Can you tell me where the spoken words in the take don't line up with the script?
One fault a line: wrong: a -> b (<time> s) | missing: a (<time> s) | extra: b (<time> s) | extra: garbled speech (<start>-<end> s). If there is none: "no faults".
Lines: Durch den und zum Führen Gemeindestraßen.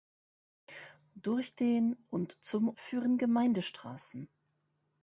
no faults